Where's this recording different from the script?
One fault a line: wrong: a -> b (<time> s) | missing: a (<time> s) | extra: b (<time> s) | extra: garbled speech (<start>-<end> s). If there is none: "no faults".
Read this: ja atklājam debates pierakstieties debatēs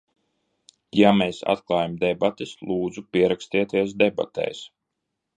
extra: mēs (1.2 s)
extra: lūdzu (2.7 s)